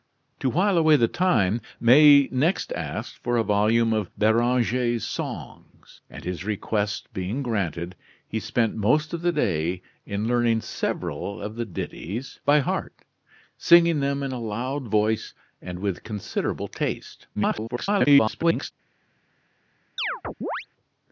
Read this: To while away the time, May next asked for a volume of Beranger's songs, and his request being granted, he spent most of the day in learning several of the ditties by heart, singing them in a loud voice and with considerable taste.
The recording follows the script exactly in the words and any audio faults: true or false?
false